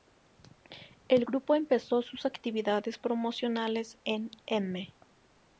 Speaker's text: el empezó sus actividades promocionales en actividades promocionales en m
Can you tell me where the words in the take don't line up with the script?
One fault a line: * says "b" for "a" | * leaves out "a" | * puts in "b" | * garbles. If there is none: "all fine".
* puts in "grupo"
* leaves out "actividades promocionales en"